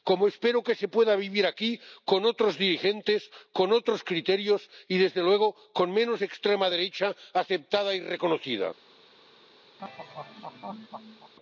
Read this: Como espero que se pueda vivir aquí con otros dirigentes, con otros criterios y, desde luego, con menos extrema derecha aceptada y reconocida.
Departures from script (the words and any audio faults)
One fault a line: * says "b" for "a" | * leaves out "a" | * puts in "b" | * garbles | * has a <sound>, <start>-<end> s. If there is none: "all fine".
* has a laugh, 9.8-11.3 s